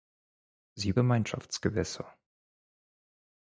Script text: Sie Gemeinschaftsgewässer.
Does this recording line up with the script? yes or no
yes